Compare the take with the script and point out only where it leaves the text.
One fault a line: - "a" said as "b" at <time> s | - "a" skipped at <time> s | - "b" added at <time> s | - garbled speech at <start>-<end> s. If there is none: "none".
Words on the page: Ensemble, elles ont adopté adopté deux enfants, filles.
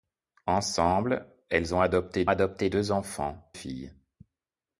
none